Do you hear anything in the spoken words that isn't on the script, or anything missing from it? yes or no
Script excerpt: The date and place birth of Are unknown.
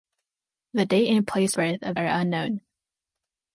no